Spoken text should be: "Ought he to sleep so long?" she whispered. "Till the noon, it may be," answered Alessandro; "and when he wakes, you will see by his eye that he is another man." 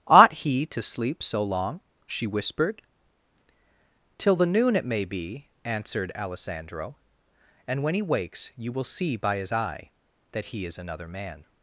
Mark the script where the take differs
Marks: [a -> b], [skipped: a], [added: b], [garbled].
"Ought he to sleep so long?" she whispered. "Till the noon, it may be," answered Alessandro; "and when he wakes, you will see by his eye that he is another man."